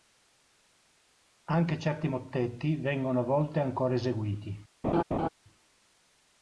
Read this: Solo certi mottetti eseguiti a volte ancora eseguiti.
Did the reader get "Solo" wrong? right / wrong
wrong